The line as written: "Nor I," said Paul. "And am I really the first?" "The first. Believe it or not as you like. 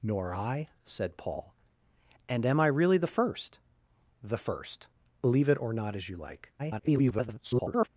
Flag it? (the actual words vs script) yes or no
yes